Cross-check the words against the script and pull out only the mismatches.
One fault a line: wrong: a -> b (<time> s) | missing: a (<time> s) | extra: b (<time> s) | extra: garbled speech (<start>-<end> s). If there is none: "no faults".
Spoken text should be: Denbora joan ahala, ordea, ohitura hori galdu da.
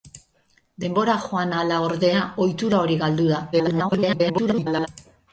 extra: garbled speech (3.5-4.9 s)